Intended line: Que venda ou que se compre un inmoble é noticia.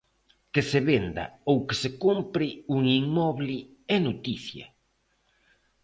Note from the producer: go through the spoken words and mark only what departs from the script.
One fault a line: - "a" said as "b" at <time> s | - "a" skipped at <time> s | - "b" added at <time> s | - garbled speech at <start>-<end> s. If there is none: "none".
- "se" added at 0.7 s